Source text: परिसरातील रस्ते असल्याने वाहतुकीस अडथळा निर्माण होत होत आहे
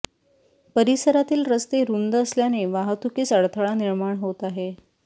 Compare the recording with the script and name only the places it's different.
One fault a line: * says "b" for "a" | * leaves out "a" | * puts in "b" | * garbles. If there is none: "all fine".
* puts in "रुंद"
* leaves out "होत"